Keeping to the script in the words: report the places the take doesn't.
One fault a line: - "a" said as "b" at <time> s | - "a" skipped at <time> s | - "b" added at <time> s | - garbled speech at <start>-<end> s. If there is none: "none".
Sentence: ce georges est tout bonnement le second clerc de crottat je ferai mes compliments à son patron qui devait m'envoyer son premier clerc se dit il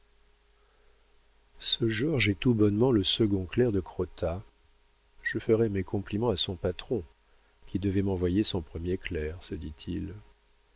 none